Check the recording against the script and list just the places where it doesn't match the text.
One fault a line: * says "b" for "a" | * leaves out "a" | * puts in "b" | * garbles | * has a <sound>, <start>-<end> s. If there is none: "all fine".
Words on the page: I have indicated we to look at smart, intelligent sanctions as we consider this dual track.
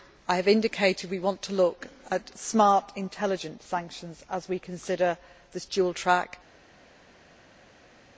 * puts in "want"